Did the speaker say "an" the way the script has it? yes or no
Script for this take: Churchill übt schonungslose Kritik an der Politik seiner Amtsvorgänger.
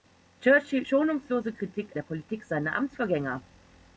no